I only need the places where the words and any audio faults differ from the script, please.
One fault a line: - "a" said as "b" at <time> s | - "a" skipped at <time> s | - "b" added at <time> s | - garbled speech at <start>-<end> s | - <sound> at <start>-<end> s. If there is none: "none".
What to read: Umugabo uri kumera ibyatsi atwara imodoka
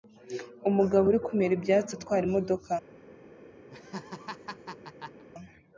- laugh at 3.7-5.2 s